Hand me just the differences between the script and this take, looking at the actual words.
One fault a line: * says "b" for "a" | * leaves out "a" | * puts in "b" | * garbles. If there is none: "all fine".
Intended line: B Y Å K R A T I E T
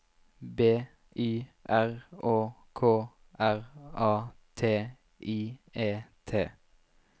* puts in "R"